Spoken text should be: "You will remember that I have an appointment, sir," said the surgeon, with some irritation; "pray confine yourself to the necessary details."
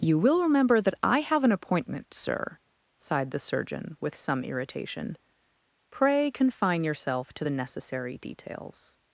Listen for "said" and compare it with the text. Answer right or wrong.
wrong